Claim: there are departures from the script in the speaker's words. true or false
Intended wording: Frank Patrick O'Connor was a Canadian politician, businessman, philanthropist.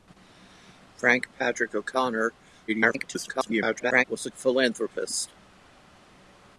true